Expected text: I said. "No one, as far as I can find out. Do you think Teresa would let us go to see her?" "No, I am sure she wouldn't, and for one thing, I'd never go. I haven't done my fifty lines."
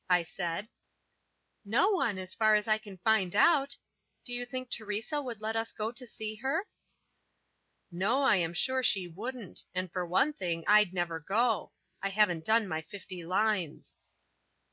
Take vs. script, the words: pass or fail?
pass